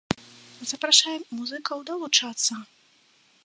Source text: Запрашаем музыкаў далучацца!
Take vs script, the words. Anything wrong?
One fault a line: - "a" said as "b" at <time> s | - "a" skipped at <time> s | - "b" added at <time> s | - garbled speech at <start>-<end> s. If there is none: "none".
none